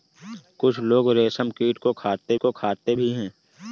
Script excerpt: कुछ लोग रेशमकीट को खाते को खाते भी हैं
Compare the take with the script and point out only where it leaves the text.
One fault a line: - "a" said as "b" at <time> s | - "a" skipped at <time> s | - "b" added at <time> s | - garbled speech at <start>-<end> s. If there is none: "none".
none